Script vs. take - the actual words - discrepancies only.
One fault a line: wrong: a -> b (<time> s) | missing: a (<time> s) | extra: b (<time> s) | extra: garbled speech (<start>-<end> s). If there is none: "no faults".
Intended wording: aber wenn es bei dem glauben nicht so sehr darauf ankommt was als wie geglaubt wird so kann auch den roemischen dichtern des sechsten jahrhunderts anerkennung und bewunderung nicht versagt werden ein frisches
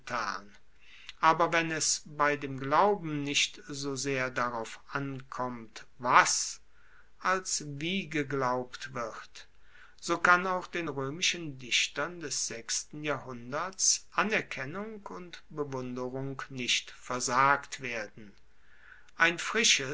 no faults